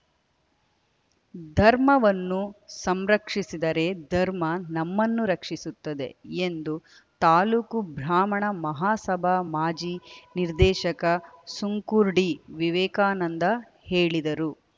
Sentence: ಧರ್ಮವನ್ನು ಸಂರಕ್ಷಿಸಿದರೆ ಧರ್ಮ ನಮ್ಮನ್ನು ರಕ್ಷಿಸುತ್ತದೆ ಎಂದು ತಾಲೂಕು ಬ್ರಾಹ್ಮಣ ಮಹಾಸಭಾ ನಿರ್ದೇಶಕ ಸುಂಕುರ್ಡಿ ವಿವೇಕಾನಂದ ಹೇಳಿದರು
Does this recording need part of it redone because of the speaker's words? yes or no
yes